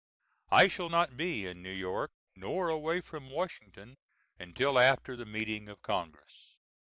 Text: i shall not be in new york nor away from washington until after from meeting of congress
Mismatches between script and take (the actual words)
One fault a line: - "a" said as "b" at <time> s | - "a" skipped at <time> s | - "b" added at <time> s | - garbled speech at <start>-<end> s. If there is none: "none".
- "from" said as "the" at 5.1 s